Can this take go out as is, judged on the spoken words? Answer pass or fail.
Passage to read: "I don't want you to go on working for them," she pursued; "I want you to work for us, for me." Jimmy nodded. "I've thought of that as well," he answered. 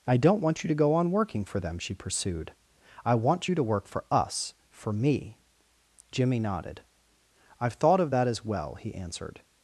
pass